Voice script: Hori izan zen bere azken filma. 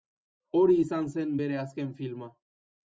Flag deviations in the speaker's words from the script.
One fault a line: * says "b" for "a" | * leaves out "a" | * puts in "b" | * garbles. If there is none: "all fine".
all fine